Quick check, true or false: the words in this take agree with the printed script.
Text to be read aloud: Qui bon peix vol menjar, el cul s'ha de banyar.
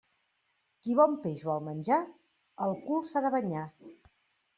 true